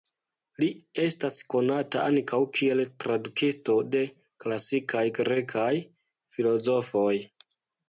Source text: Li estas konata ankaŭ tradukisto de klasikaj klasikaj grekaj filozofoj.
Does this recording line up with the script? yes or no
no